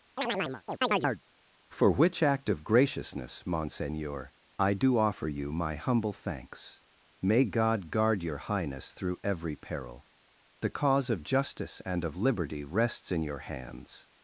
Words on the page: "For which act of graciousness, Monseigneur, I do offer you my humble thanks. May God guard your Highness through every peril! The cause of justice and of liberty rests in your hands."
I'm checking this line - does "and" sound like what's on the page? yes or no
yes